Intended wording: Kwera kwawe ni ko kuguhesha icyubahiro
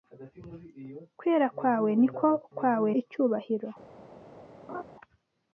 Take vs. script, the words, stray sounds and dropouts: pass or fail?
fail